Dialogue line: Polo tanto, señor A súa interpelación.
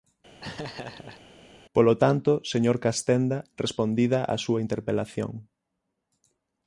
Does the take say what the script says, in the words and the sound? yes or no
no